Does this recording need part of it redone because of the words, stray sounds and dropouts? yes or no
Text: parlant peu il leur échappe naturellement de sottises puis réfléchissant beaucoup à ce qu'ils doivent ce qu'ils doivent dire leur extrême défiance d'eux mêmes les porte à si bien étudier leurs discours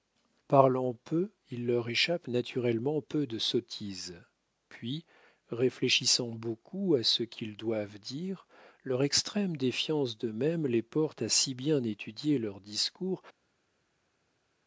yes